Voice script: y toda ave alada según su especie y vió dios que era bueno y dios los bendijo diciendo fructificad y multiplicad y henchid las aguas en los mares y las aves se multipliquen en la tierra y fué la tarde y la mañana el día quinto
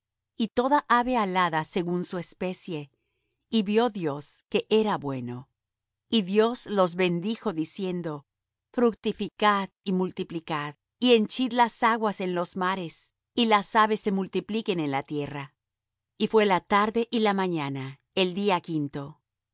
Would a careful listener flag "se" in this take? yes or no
no